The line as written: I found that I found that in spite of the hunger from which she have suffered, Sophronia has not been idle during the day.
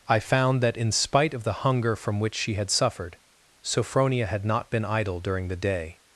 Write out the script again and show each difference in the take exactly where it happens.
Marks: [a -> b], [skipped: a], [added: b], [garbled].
I found that [skipped: I found that] in spite of the hunger from which she [have -> had] suffered, Sophronia [has -> had] not been idle during the day.